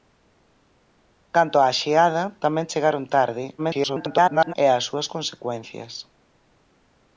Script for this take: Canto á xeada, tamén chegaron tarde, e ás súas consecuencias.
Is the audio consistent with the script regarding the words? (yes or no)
no